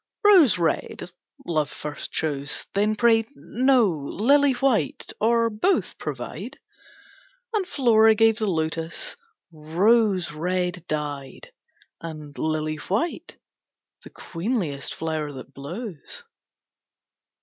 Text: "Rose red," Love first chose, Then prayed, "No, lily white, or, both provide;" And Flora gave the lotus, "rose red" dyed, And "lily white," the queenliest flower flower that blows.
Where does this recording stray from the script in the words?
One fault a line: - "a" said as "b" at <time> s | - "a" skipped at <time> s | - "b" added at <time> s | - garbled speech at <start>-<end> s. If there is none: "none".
- "flower" skipped at 15.3 s